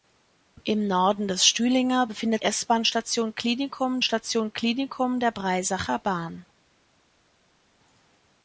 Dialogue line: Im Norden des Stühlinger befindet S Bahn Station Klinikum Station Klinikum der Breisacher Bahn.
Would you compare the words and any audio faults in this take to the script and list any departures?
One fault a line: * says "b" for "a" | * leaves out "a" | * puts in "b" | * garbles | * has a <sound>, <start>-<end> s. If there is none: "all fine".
all fine